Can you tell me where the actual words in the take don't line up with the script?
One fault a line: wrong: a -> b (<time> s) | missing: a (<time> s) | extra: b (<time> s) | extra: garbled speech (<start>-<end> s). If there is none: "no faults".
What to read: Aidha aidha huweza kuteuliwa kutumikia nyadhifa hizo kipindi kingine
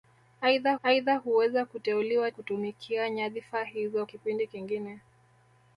no faults